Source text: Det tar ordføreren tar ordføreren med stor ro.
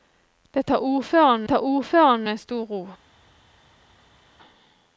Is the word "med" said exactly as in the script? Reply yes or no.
yes